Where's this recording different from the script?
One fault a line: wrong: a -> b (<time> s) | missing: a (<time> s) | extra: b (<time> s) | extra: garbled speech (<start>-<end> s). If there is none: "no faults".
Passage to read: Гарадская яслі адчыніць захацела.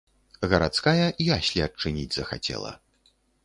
no faults